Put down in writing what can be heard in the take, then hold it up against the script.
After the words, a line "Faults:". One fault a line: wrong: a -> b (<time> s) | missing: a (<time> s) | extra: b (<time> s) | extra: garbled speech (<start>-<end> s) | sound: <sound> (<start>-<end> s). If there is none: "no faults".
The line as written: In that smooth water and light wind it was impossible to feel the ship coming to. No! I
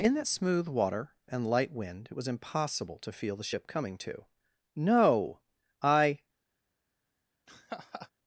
In that smooth water and light wind it was impossible to feel the ship coming to. No! I
Faults:
sound: laugh (7.5-8.1 s)